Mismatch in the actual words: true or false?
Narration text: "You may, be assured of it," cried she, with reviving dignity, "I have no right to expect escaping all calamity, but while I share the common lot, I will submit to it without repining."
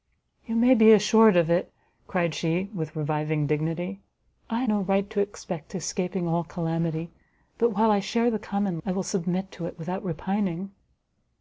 true